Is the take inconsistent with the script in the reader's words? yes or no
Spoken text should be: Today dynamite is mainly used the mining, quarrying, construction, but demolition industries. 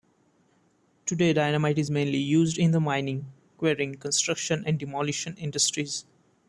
yes